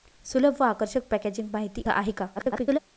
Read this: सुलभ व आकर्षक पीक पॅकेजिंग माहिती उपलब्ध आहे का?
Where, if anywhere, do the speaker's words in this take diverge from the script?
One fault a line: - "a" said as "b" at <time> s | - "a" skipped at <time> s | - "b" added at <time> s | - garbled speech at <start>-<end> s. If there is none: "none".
- "पीक" skipped at 1.1 s
- "उपलब्ध" skipped at 1.8 s
- garbled speech at 2.3-2.8 s